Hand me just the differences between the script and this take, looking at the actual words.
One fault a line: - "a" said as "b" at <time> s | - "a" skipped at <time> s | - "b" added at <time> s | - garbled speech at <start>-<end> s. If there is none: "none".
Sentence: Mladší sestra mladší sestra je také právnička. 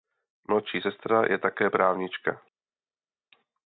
- "mladší sestra" skipped at 1.2 s